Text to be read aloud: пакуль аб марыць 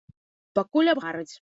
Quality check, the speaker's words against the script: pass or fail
pass